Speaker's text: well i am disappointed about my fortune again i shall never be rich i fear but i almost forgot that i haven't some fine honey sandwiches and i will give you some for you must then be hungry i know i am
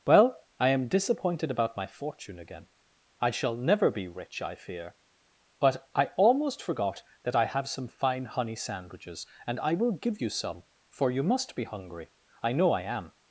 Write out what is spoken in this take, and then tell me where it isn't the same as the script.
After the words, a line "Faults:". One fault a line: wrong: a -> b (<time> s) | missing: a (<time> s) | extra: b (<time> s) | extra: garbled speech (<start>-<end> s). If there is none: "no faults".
well i am disappointed about my fortune again i shall never be rich i fear but i almost forgot that i have some fine honey sandwiches and i will give you some for you must be hungry i know i am
Faults:
wrong: haven't -> have (7.5 s)
missing: then (11.6 s)